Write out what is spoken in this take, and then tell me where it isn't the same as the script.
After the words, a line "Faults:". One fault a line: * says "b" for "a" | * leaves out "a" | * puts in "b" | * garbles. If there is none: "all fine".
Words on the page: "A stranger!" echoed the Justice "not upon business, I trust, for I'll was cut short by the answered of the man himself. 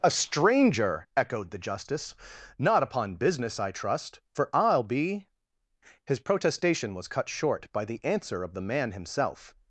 "A stranger!" echoed the Justice "not upon business, I trust, for I'll be" His protestation was cut short by the answer of the man himself.
Faults:
* puts in "be His protestation"
* says "answer" for "answered"